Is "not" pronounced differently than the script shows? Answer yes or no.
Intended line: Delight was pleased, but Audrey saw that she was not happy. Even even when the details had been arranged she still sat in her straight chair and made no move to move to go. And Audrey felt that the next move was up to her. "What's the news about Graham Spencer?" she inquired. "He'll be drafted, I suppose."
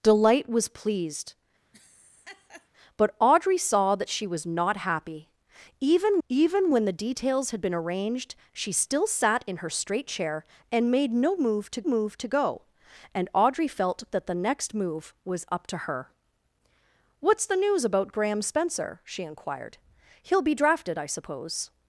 no